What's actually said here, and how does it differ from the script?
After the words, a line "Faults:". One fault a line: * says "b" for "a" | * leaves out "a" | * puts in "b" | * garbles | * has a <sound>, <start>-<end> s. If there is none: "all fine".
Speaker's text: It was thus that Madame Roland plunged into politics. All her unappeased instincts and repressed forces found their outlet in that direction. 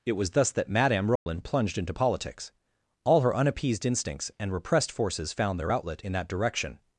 It was thus that Madame Roland plunged into politics. All her unappeased instincts and repressed forces found their outlet in that direction.
Faults:
* has a dropout, 1.2-1.3 s